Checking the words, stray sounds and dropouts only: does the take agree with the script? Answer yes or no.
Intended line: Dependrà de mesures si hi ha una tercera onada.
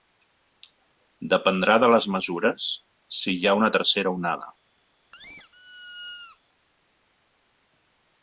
no